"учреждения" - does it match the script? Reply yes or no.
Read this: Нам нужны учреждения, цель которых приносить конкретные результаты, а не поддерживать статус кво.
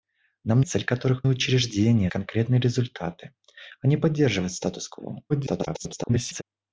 no